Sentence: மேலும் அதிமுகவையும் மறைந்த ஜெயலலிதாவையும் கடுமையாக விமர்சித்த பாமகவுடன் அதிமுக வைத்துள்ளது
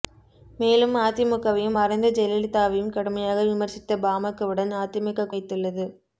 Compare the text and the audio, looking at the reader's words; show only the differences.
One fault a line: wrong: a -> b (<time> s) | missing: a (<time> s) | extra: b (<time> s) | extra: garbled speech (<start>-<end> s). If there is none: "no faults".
no faults